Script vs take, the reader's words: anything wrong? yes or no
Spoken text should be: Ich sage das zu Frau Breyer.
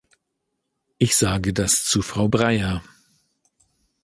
no